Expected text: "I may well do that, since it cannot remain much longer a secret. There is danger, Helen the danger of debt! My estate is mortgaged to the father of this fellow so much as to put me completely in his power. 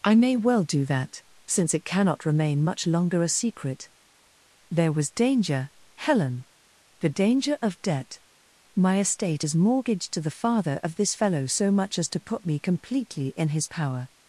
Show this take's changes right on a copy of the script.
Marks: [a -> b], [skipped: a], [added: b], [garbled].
"I may well do that, since it cannot remain much longer a secret. There [is -> was] danger, Helen the danger of debt! My estate is mortgaged to the father of this fellow so much as to put me completely in his power.